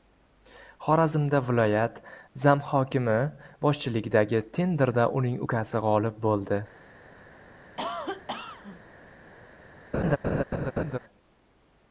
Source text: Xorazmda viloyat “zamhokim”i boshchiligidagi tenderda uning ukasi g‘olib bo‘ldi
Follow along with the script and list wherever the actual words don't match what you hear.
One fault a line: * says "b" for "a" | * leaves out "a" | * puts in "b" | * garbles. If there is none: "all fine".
all fine